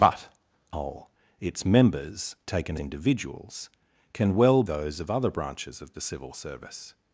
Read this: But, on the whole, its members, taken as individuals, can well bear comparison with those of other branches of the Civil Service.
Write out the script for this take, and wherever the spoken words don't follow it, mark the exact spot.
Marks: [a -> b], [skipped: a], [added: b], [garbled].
But, [skipped: on the] whole, its members, taken [skipped: as] individuals, can well [skipped: bear comparison with] those of other branches of the Civil Service.